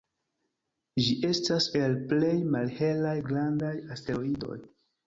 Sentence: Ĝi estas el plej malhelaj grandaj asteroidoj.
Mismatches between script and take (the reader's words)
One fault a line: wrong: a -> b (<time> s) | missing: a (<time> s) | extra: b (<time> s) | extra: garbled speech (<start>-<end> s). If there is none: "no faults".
no faults